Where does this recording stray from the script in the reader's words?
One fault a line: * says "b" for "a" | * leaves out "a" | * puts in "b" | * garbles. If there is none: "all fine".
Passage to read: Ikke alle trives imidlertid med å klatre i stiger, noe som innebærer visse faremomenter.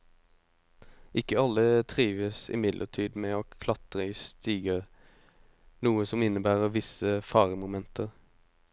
all fine